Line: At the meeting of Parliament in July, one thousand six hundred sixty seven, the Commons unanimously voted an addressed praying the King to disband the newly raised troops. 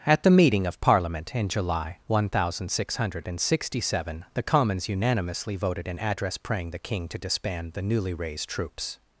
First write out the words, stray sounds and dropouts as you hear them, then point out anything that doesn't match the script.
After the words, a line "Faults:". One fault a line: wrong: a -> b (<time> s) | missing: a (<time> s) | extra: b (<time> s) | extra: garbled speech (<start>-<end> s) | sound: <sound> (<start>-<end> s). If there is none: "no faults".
At the meeting of Parliament in July, one thousand six hundred sixty seven, the Commons unanimously voted an address praying the King to disband the newly raised troops.
Faults:
wrong: addressed -> address (6.0 s)